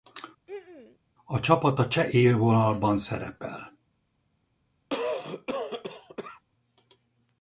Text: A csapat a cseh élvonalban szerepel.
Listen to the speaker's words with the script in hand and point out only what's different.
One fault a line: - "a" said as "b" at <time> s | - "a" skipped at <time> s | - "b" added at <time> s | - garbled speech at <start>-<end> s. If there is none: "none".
none